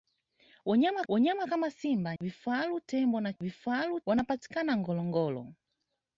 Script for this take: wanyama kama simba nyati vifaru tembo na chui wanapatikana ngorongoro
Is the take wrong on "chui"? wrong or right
wrong